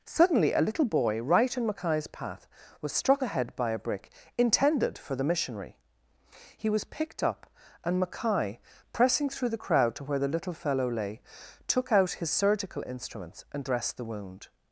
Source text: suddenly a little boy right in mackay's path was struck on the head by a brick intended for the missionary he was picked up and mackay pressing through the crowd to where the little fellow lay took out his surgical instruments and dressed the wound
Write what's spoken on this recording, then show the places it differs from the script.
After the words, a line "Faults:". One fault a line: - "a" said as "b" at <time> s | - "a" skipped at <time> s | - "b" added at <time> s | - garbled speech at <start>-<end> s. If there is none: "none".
suddenly a little boy right in mackay's path was struck the head by a brick intended for the missionary he was picked up and mackay pressing through the crowd to where the little fellow lay took out his surgical instruments and dressed the wound
Faults:
- "on" skipped at 3.2 s